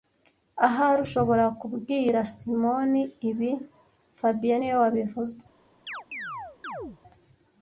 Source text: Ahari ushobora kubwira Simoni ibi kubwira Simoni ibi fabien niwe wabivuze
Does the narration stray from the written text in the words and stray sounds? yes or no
yes